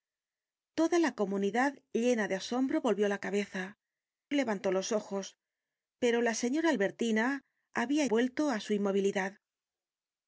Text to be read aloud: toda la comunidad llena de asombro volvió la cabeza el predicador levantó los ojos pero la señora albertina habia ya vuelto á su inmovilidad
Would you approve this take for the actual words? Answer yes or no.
no